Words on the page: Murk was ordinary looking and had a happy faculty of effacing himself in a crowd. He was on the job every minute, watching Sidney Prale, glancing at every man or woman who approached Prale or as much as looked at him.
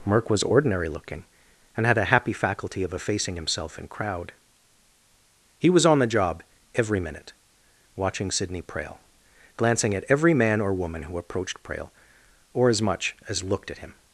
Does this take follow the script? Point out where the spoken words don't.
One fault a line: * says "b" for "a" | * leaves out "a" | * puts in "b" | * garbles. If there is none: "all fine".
* leaves out "a"